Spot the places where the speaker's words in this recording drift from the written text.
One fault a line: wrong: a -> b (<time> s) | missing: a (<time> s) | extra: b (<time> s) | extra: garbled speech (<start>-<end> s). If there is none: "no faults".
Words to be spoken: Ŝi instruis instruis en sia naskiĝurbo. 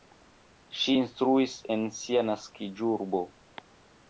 missing: instruis (1.5 s)